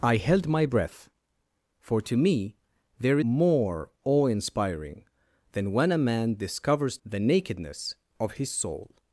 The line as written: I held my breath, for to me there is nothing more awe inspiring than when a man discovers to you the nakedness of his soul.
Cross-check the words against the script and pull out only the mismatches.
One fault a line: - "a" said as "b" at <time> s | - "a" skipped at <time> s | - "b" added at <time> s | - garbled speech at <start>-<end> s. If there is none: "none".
- "is nothing" skipped at 3.2 s
- "to you" skipped at 7.0 s